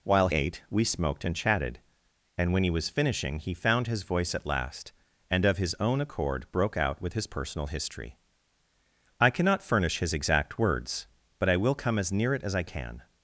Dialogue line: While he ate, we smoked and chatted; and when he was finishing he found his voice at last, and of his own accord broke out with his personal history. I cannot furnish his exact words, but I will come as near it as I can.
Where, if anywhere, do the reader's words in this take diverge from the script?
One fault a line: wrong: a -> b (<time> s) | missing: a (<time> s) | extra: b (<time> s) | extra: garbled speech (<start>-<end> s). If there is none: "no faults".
missing: he (0.3 s)